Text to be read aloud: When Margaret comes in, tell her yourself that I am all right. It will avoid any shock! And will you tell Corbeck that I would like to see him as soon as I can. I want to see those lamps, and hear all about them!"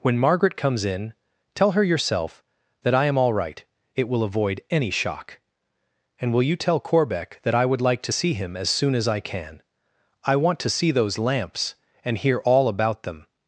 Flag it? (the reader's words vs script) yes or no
no